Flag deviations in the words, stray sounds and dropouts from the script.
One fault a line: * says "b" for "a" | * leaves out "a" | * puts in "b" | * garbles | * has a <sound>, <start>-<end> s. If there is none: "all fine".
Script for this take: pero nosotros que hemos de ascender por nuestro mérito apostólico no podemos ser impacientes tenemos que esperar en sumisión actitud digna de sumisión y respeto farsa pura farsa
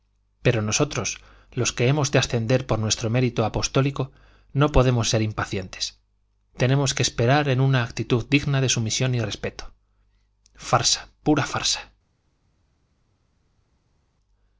* puts in "los"
* says "una" for "sumisión"